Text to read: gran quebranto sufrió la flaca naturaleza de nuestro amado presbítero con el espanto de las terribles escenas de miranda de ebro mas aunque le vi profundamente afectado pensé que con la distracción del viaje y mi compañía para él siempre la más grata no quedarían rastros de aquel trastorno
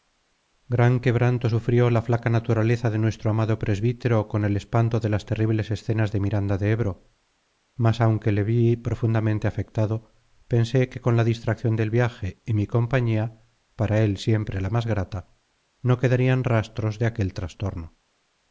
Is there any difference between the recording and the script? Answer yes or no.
no